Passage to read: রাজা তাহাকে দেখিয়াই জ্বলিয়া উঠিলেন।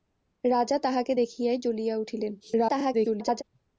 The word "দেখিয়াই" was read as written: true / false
true